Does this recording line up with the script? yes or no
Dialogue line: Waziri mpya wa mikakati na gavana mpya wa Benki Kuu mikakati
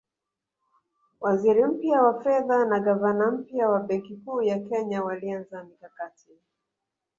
no